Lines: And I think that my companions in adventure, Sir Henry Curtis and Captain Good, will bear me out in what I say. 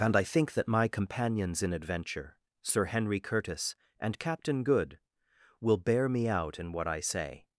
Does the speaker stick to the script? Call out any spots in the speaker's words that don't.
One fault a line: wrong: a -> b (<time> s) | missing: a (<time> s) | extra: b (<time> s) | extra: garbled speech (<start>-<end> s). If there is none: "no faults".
no faults